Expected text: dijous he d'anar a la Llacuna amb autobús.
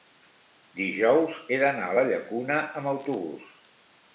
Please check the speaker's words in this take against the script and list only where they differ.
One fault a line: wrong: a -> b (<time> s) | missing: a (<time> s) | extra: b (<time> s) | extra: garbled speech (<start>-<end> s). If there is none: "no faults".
no faults